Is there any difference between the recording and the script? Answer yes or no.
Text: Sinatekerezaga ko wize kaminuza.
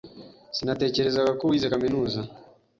no